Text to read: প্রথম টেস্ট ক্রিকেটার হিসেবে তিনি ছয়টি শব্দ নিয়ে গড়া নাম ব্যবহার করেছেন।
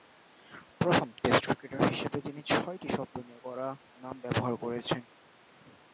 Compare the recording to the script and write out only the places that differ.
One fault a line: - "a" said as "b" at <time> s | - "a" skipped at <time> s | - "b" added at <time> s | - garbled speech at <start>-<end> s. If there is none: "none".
none